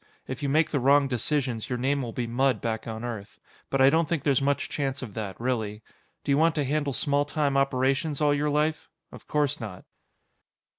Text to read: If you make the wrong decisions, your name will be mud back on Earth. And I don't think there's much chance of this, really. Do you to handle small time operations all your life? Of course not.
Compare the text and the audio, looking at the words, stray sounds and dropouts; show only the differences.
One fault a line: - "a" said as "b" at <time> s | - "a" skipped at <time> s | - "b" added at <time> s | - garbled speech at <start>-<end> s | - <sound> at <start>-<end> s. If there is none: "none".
- "And" said as "But" at 3.7 s
- "this" said as "that" at 5.1 s
- "want" added at 6.4 s